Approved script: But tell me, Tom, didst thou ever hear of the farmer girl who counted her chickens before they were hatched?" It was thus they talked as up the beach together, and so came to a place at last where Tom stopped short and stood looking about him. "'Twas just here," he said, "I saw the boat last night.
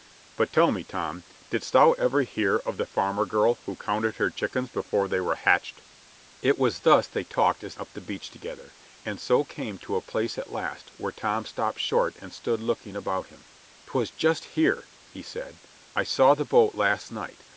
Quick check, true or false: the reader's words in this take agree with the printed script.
true